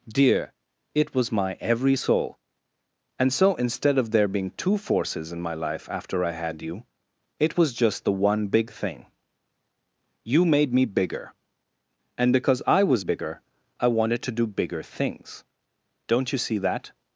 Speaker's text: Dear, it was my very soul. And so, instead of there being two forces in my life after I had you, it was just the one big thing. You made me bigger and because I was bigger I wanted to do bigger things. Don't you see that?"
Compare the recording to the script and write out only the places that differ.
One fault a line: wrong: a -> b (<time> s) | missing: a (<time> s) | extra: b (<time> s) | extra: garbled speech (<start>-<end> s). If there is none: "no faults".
wrong: very -> every (1.6 s)